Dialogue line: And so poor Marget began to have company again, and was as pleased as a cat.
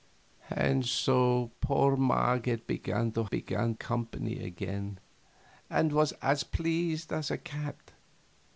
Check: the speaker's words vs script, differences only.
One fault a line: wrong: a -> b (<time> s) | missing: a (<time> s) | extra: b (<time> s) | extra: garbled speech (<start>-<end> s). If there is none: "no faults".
wrong: have -> began (3.3 s)